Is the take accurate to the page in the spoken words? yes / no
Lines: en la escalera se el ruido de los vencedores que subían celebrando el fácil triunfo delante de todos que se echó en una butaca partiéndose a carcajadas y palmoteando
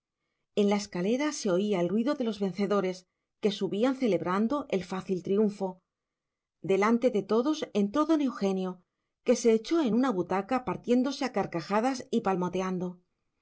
no